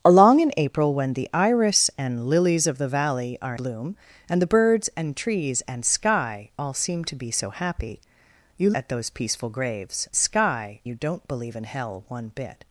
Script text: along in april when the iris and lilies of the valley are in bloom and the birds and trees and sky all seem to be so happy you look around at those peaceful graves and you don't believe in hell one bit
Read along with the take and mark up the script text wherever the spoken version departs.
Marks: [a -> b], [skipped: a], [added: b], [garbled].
along in april when the iris and lilies of the valley are [skipped: in] bloom and the birds and trees and sky all seem to be so happy you [skipped: look around] at those peaceful graves [and -> sky] you don't believe in hell one bit